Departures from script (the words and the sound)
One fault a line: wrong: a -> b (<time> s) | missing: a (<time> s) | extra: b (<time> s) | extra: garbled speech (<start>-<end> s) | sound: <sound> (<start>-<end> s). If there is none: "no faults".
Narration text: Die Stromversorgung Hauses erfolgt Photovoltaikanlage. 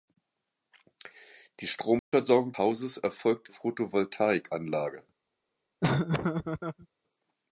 sound: dropout (2.0-2.1 s)
sound: laugh (5.8-6.9 s)